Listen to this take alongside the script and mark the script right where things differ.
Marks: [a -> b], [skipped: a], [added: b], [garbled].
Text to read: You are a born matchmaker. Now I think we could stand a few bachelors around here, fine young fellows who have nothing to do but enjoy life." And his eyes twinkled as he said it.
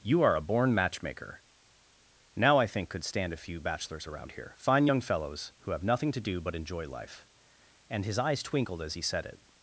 You are a born matchmaker. Now I think [skipped: we] could stand a few bachelors around here, fine young fellows who have nothing to do but enjoy life." And his eyes twinkled as he said it.